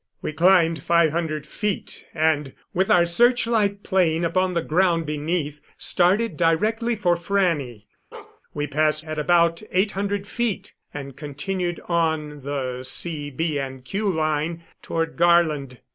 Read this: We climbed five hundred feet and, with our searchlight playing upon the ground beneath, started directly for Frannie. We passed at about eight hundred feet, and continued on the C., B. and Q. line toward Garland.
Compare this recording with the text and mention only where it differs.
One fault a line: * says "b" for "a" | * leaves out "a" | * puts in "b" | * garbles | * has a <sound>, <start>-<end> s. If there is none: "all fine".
* has a bark, 8.1-8.4 s